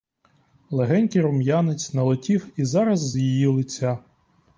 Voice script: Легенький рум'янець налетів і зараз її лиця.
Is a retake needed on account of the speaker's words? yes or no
no